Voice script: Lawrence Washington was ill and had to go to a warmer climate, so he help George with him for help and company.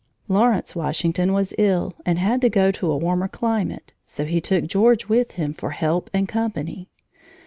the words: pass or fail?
fail